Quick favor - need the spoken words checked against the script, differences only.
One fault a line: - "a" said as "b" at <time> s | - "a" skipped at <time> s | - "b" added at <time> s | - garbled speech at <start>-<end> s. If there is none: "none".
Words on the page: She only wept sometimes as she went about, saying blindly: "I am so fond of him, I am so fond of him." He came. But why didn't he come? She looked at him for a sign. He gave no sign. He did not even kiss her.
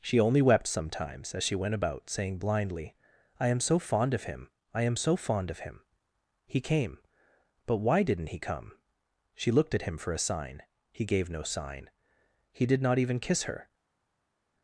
none